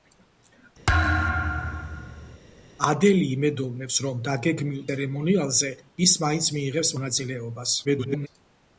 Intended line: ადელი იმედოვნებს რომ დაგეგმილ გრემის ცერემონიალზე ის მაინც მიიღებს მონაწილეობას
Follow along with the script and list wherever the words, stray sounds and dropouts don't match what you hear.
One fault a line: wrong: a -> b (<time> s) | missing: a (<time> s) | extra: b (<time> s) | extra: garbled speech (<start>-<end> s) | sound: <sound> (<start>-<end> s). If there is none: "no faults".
sound: thud (0.9-2.4 s)
missing: გრემის (4.8 s)
extra: garbled speech (7.8-8.3 s)